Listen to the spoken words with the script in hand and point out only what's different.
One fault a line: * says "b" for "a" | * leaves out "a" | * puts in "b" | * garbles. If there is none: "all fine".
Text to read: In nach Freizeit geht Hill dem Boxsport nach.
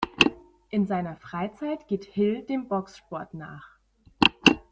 * says "seiner" for "nach"